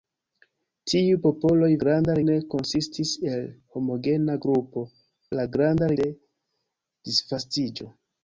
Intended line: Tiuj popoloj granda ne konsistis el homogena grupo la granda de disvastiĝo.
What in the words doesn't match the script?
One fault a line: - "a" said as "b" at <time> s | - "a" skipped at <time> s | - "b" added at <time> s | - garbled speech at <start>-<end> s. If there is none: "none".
none